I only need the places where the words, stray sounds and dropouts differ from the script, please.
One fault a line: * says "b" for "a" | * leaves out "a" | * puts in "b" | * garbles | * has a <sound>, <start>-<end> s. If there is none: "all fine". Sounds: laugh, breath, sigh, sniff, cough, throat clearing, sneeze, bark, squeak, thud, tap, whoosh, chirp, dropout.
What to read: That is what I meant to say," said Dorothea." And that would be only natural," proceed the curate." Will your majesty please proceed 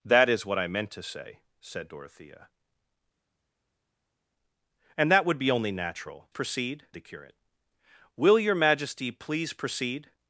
all fine